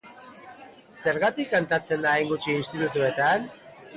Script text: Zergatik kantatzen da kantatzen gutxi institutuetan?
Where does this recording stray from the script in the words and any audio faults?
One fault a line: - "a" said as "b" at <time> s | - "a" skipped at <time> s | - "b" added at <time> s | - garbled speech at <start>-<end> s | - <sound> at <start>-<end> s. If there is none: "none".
- "kantatzen" said as "hain" at 2.1 s